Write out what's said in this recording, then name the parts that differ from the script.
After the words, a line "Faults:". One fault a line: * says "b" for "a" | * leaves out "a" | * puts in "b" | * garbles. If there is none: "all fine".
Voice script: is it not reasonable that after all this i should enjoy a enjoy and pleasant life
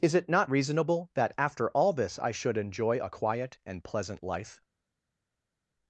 is it not reasonable that after all this i should enjoy a quiet and pleasant life
Faults:
* says "quiet" for "enjoy"